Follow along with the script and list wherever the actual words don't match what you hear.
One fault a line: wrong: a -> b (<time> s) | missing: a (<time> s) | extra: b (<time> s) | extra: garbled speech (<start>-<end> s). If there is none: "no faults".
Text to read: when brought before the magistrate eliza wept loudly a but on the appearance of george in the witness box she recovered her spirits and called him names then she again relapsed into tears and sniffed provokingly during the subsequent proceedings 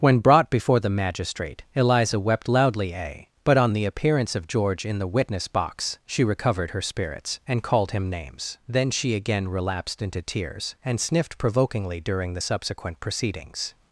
no faults